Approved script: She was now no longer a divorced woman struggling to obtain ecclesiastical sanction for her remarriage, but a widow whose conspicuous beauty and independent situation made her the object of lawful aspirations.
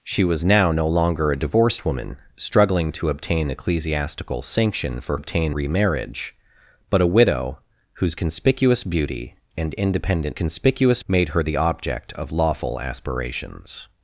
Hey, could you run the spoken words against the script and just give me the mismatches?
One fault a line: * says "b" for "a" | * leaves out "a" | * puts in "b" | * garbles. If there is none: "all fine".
* says "obtain" for "her"
* says "conspicuous" for "situation"